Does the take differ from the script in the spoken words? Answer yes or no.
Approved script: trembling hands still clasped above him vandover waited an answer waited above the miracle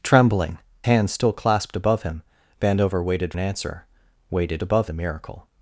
no